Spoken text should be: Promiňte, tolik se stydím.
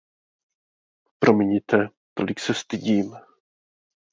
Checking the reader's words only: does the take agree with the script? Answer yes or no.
yes